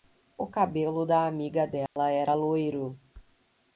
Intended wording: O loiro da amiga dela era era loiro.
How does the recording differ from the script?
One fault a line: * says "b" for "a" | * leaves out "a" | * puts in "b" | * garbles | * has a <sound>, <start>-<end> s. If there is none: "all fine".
* says "cabelo" for "loiro"
* has a dropout, 1.9-2.0 s
* leaves out "era"